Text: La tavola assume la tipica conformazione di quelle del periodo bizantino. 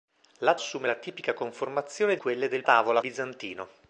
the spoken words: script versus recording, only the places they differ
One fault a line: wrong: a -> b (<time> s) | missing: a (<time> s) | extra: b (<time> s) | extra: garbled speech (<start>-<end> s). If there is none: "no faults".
missing: tavola (0.6 s)
missing: di (2.2 s)
wrong: periodo -> tavola (2.6 s)